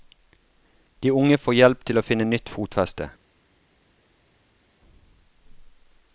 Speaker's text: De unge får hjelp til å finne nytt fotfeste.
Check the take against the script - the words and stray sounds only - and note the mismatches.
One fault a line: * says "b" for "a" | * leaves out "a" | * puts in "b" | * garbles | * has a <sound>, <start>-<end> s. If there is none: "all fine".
all fine